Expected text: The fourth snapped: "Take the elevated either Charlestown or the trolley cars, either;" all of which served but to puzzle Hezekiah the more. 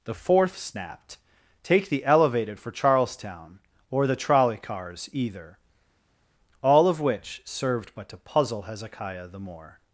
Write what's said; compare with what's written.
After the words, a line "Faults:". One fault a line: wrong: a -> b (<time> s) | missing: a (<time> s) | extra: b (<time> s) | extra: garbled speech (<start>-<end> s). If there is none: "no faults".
The fourth snapped: "Take the elevated for Charlestown or the trolley cars, either;" all of which served but to puzzle Hezekiah the more.
Faults:
wrong: either -> for (2.6 s)